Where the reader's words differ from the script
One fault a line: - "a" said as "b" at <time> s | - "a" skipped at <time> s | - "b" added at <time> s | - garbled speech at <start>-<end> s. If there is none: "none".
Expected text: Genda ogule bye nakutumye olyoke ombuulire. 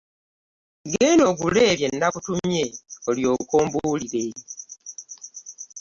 none